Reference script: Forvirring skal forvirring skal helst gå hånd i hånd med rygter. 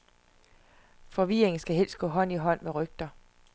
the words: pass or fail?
fail